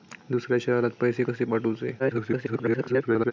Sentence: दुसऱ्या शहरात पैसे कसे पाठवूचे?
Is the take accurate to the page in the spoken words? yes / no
no